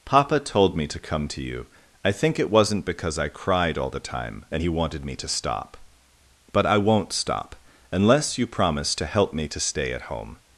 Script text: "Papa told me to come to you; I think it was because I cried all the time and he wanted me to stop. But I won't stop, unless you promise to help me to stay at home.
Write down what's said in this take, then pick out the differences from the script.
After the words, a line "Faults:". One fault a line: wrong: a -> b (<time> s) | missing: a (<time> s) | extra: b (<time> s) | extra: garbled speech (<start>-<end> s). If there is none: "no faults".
"Papa told me to come to you; I think it wasn't because I cried all the time and he wanted me to stop. But I won't stop, unless you promise to help me to stay at home.
Faults:
wrong: was -> wasn't (2.5 s)